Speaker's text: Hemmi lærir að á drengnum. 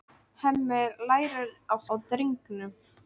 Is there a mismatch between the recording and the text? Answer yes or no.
no